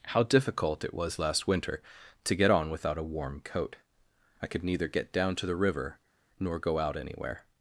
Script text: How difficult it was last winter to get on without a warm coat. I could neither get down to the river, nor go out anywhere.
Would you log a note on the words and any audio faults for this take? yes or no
no